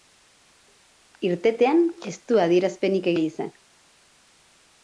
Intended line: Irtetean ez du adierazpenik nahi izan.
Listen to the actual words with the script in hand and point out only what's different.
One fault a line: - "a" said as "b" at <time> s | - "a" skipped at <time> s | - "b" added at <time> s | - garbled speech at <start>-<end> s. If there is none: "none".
none